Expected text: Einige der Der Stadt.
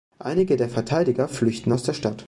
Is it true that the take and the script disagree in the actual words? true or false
true